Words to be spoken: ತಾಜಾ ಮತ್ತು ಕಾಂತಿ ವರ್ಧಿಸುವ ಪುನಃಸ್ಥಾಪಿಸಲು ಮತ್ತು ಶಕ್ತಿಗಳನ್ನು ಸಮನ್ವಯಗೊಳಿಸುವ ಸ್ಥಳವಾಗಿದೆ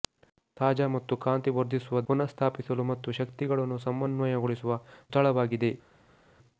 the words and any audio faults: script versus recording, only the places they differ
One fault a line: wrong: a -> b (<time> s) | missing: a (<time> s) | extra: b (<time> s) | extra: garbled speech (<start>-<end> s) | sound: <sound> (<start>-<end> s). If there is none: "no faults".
no faults